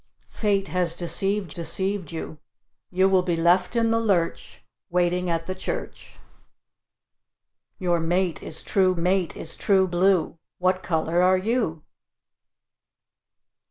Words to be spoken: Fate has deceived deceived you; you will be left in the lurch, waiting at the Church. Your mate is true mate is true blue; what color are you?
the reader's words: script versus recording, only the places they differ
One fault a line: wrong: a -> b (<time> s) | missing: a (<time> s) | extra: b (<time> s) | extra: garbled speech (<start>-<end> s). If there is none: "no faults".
no faults